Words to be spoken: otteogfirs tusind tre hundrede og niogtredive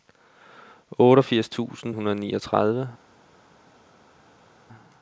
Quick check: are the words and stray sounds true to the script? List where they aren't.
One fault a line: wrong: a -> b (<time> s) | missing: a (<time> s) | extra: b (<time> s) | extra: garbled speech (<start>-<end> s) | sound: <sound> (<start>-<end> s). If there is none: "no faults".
missing: tre (1.9 s)